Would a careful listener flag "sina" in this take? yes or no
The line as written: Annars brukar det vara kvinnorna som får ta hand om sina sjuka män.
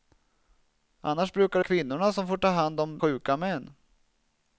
yes